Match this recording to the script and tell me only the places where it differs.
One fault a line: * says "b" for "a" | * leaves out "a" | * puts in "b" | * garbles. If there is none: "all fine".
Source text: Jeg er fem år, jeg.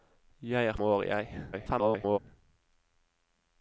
* leaves out "fem"
* garbles